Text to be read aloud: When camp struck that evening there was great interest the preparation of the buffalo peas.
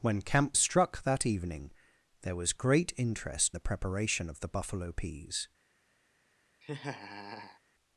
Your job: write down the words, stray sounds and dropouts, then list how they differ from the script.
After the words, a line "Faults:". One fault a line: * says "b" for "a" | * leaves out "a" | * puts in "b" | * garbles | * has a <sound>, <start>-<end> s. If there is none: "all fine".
When camp struck that evening there was great interest the preparation of the buffalo peas.
Faults:
* has a laugh, 6.6-7.6 s